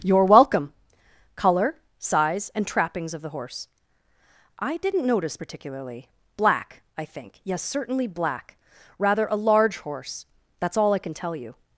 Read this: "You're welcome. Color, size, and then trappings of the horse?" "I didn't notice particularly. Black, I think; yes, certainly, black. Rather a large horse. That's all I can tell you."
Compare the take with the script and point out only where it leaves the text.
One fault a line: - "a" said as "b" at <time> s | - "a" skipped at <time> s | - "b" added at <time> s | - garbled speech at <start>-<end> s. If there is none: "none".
- "then" skipped at 2.6 s